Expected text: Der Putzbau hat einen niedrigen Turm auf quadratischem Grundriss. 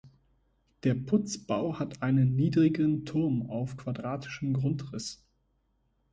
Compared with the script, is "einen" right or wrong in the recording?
right